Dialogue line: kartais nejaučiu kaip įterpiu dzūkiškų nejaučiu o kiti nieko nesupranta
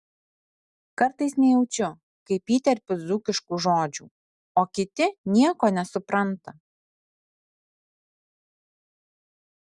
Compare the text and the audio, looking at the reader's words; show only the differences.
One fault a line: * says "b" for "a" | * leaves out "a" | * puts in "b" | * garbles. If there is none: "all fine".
* says "žodžių" for "nejaučiu"